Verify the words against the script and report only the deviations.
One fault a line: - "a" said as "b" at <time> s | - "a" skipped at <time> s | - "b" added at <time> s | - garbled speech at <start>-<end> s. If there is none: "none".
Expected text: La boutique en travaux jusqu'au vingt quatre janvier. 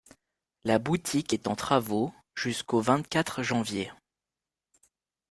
- "est" added at 1.3 s